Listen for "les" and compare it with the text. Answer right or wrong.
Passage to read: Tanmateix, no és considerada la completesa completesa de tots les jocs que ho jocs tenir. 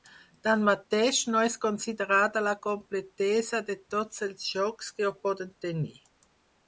wrong